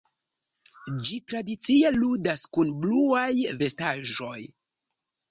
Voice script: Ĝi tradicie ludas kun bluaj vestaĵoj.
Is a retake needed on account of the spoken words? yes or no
no